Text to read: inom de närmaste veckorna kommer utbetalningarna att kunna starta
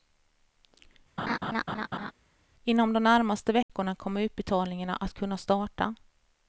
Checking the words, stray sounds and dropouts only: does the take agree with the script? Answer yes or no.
no